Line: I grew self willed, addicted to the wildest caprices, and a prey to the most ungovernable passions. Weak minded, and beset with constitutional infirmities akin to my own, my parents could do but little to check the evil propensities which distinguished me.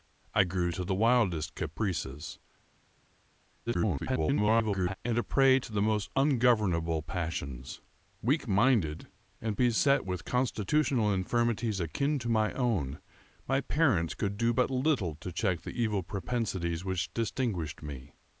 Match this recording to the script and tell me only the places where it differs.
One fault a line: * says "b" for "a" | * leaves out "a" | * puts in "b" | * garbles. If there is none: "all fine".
* leaves out "self willed addicted"
* garbles